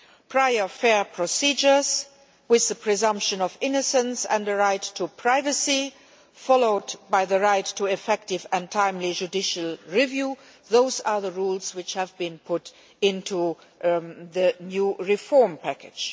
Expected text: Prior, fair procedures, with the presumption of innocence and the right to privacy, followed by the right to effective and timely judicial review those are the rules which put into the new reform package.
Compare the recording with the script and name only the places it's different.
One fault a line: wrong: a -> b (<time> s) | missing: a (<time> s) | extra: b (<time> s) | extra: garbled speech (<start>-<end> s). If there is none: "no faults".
extra: have been (11.9 s)